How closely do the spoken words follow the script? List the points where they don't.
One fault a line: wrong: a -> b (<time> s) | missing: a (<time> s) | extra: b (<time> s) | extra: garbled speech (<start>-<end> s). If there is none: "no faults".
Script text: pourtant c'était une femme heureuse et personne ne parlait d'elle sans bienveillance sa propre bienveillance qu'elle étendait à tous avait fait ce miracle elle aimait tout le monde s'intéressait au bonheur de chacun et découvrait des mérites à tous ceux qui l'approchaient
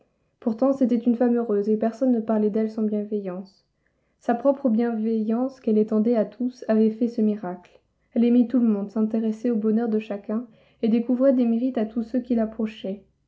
no faults